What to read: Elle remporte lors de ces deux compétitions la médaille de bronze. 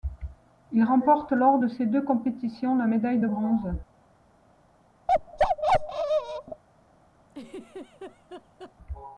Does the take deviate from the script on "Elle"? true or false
true